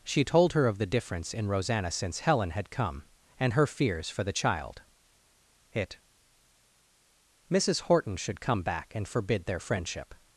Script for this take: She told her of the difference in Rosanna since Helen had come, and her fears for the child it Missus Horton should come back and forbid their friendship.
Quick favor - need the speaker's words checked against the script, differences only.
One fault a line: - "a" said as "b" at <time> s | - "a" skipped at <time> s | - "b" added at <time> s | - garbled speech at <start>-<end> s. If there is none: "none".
none